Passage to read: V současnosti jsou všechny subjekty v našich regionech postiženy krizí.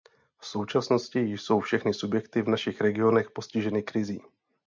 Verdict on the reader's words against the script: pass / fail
pass